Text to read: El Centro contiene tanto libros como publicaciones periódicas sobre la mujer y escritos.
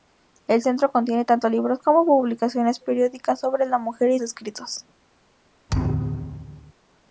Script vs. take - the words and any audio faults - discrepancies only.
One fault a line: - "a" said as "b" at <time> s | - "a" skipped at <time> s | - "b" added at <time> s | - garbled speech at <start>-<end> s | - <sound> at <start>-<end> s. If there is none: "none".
- thud at 5.7-6.7 s